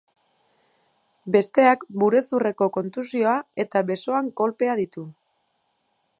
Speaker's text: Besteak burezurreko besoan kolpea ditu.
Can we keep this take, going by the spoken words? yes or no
no